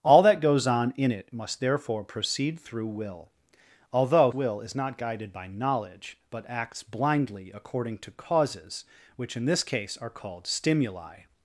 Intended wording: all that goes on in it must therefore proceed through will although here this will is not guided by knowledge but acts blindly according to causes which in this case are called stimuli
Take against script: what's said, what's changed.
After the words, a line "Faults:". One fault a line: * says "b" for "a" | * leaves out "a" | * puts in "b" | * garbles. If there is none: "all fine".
all that goes on in it must therefore proceed through will although will is not guided by knowledge but acts blindly according to causes which in this case are called stimuli
Faults:
* leaves out "here this"